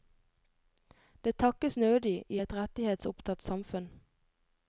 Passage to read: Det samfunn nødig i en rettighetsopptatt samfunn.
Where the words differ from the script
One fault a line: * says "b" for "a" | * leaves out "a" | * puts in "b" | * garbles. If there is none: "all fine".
* says "takkes" for "samfunn"
* says "et" for "en"